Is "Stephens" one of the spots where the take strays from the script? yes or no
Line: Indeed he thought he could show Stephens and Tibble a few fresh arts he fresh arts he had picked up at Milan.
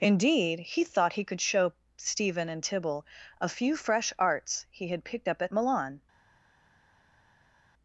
yes